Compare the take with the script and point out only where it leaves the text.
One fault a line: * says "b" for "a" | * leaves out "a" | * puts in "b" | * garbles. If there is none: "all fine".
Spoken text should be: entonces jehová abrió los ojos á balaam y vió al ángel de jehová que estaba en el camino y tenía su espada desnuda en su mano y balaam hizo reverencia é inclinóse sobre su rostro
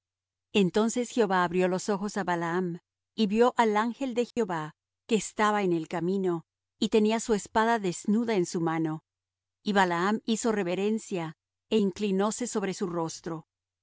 all fine